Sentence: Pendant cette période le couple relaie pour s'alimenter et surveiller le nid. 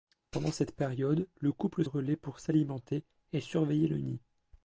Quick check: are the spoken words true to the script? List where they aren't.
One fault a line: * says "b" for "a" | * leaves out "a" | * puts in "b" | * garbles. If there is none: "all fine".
all fine